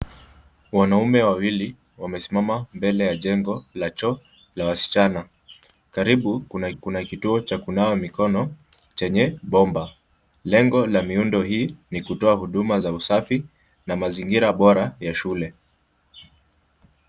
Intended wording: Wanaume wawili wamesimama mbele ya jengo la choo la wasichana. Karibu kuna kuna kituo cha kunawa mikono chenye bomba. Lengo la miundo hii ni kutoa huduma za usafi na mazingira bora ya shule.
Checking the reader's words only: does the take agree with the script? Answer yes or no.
yes